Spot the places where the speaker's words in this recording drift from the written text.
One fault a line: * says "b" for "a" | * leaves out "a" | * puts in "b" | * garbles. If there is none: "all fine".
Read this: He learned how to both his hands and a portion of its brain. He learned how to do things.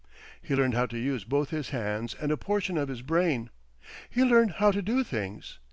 * puts in "use"
* says "his" for "its"